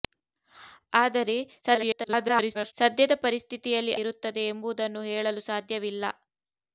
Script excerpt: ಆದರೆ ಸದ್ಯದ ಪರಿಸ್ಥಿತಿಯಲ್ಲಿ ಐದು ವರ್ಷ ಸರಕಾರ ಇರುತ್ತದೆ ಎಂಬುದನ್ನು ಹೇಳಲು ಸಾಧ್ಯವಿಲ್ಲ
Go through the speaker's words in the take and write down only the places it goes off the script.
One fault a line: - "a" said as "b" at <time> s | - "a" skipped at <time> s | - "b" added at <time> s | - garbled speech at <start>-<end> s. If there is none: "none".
- garbled speech at 1.6-2.7 s
- "ಐದು ವರ್ಷ ಸರಕಾರ" skipped at 3.9 s